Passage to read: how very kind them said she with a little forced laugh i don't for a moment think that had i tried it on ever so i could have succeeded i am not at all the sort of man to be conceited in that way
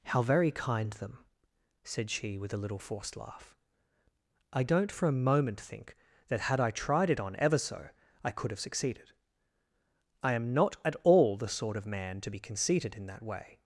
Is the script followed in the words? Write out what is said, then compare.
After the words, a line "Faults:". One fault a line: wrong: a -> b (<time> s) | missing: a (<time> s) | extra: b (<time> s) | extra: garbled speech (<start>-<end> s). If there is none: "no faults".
how very kind them said she with a little forced laugh i don't for a moment think that had i tried it on ever so i could have succeeded i am not at all the sort of man to be conceited in that way
Faults:
no faults